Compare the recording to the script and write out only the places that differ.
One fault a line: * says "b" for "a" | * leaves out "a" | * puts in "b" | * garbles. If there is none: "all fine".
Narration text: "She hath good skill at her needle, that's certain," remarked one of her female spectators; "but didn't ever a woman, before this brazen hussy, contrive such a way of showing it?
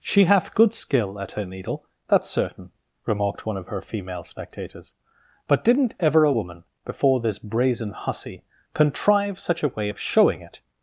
all fine